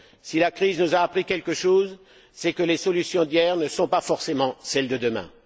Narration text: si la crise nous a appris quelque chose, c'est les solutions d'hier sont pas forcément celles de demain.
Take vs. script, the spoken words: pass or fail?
fail